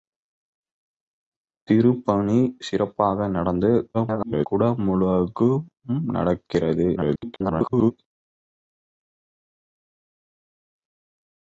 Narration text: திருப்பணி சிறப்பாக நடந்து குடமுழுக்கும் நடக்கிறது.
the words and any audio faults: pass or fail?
fail